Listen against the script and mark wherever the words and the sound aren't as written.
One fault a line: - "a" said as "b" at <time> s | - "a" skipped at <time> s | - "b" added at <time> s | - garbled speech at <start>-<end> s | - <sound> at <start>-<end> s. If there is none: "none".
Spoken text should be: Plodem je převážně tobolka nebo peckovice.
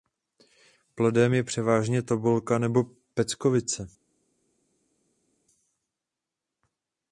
none